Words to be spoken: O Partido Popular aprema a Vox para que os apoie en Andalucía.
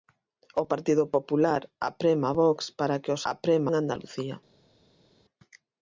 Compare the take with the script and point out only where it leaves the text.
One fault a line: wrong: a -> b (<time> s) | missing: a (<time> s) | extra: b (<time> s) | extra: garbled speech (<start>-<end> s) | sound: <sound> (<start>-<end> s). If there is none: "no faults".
wrong: apoie -> aprema (3.3 s)